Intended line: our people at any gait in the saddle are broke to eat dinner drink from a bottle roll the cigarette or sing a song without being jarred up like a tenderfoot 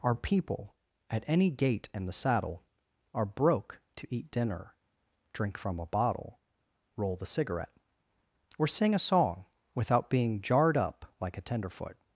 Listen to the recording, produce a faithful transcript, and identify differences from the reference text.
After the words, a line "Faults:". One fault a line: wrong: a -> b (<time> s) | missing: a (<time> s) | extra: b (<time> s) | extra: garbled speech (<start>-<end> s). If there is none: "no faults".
our people at any gait in the saddle are broke to eat dinner drink from a bottle roll the cigarette or sing a song without being jarred up like a tenderfoot
Faults:
no faults